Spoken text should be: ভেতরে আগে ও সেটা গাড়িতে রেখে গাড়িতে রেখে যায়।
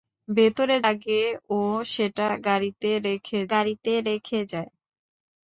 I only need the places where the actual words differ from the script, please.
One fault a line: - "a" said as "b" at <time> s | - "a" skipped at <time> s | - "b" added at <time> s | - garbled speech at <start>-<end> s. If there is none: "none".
none